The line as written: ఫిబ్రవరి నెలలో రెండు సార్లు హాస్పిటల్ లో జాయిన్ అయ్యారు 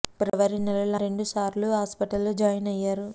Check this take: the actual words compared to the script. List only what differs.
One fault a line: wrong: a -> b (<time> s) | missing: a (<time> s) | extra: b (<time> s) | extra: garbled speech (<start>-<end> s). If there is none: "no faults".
no faults